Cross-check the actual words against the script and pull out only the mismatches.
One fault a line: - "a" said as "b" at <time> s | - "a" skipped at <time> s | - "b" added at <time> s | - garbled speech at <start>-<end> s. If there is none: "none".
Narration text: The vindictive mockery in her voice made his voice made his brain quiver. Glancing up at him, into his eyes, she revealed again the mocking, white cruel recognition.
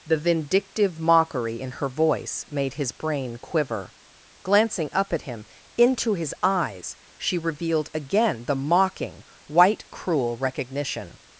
- "voice made his" skipped at 2.9 s